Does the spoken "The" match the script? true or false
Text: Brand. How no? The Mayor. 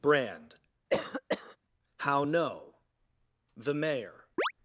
true